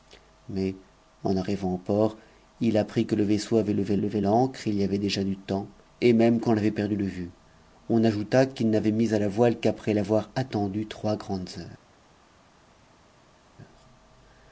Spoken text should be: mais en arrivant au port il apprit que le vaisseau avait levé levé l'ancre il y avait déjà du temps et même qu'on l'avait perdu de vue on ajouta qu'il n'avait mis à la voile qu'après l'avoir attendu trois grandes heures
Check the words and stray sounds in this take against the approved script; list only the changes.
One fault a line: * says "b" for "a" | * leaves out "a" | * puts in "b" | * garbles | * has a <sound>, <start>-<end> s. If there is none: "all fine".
all fine